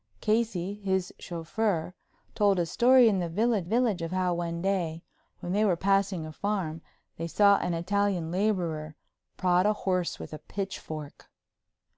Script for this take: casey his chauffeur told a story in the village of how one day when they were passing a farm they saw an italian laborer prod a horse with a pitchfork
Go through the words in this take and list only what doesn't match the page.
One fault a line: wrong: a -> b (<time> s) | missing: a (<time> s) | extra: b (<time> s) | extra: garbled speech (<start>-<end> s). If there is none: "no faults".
extra: village (3.6 s)